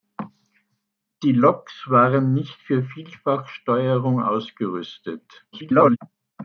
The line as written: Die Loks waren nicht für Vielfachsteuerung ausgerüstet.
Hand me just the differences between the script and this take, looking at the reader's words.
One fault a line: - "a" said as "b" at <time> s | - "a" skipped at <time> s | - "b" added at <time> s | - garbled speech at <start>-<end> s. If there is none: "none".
- garbled speech at 5.5-6.0 s